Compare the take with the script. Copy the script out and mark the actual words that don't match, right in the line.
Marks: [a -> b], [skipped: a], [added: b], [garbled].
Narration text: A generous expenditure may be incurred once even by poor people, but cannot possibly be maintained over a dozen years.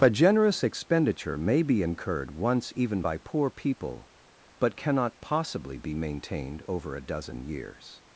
A generous expenditure may be incurred once even by poor people, but cannot possibly be maintained over a dozen years.